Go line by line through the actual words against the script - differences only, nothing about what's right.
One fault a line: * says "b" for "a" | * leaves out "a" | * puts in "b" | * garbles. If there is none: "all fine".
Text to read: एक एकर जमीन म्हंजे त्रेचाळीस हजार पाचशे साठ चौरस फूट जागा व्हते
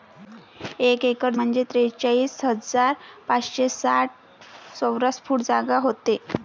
* leaves out "जमीन"